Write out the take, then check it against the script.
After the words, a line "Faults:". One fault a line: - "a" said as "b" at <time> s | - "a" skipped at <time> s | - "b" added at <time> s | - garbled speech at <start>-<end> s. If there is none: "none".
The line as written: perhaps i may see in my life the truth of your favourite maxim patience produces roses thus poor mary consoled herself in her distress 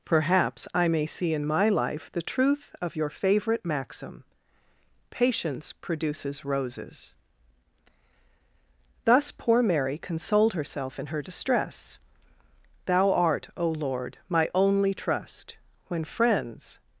perhaps i may see in my life the truth of your favourite maxim patience produces roses thus poor mary consoled herself in her distress thou art o lord my only trust when friends
Faults:
- "thou art o lord my only trust when friends" added at 12.9 s